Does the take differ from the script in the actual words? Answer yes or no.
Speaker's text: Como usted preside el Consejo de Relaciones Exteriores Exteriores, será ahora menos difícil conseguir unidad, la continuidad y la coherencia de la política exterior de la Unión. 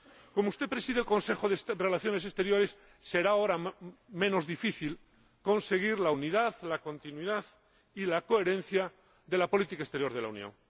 yes